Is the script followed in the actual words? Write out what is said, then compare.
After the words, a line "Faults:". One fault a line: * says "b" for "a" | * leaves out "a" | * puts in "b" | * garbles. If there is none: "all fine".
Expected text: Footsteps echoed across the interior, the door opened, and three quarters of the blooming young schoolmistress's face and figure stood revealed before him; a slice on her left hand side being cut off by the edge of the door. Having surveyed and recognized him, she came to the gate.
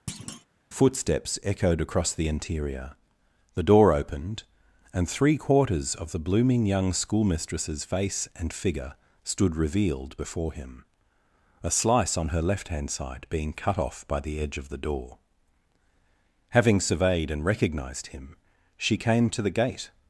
Footsteps echoed across the interior, the door opened, and three quarters of the blooming young schoolmistress's face and figure stood revealed before him; a slice on her left hand side being cut off by the edge of the door. Having surveyed and recognized him, she came to the gate.
Faults:
all fine